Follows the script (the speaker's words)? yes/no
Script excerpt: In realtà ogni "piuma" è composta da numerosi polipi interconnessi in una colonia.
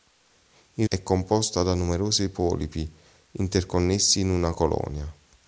no